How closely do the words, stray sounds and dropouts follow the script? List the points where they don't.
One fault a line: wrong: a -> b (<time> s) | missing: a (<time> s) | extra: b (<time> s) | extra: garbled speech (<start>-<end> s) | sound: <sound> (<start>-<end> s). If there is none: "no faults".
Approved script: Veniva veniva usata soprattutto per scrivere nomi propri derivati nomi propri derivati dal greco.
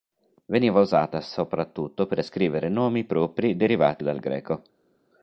missing: veniva (0.8 s)
missing: nomi propri derivati (4.0 s)